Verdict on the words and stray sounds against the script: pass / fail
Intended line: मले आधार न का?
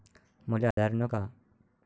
fail